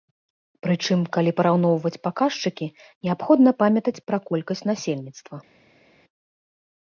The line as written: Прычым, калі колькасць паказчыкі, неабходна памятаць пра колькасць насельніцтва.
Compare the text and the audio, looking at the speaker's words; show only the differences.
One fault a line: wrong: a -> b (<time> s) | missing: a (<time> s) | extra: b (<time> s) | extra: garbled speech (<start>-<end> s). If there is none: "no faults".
wrong: колькасць -> параўноўваць (1.4 s)